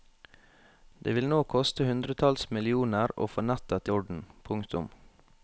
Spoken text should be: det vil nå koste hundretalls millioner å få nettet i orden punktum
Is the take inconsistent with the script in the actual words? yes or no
no